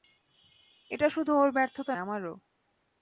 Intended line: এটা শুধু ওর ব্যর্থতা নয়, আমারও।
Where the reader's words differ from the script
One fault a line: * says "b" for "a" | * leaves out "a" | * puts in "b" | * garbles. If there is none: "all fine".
* leaves out "নয়"